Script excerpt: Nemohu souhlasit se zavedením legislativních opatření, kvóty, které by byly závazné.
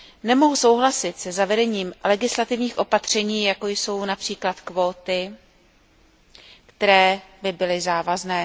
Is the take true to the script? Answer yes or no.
no